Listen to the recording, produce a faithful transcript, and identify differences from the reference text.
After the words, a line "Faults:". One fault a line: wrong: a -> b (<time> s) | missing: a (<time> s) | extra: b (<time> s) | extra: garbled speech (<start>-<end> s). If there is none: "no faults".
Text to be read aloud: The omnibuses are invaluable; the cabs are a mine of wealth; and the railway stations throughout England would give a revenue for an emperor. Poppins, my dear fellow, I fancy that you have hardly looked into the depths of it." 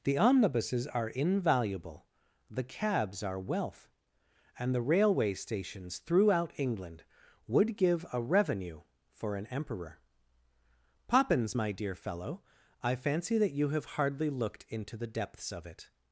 The omnibuses are invaluable; the cabs are wealth; and the railway stations throughout England would give a revenue for an emperor. Poppins, my dear fellow, I fancy that you have hardly looked into the depths of it."
Faults:
missing: a mine of (3.4 s)